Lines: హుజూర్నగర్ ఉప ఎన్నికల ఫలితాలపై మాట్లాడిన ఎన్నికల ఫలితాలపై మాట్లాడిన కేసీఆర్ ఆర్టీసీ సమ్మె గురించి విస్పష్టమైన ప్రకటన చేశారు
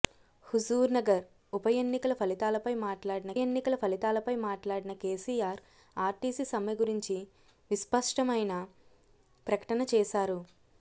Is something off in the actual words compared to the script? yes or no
no